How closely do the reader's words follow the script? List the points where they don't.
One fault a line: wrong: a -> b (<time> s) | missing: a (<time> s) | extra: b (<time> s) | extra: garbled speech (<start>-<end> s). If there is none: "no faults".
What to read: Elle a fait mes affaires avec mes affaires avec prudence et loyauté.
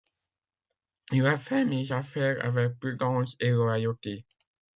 wrong: Elle -> Il (1.1 s)
missing: mes affaires avec (2.8 s)